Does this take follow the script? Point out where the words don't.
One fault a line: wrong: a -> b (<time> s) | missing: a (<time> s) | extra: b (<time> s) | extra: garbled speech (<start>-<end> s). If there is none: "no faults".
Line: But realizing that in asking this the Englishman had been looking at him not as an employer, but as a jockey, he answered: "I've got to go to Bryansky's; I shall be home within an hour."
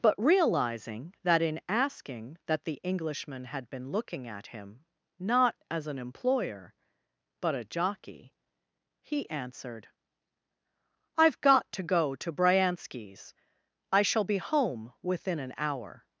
wrong: this -> that (2.5 s)
missing: as (7.5 s)